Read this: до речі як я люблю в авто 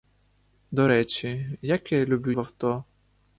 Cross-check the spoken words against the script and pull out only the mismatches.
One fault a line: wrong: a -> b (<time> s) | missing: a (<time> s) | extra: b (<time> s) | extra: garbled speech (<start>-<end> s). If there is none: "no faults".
no faults